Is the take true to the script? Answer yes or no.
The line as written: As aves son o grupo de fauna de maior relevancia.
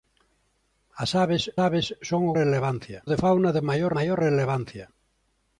no